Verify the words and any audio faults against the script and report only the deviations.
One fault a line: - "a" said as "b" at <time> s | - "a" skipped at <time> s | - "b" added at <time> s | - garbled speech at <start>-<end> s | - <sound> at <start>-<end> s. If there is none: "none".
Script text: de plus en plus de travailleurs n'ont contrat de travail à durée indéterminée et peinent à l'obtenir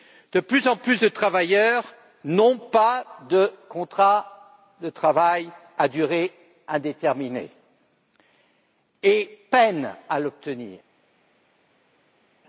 - "pas de" added at 2.6 s